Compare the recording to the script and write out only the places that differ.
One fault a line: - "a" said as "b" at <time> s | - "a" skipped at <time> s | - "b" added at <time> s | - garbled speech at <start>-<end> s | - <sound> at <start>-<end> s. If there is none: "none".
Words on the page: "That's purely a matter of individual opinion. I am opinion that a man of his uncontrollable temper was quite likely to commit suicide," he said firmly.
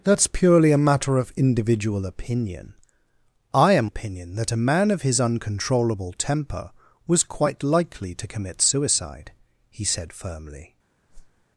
- whoosh at 11.1-11.4 s